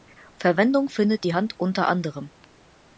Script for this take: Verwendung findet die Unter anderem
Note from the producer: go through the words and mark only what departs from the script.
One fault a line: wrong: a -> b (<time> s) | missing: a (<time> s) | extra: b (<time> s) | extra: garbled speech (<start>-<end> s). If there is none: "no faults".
extra: Hand (1.3 s)